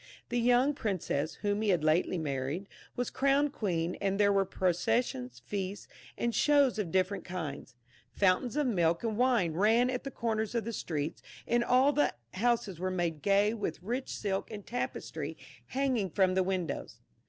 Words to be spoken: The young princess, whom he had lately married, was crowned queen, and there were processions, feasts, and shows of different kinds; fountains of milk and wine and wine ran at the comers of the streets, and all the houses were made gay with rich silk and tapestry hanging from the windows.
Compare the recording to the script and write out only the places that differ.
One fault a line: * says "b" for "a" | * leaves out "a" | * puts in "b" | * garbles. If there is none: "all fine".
* leaves out "and wine"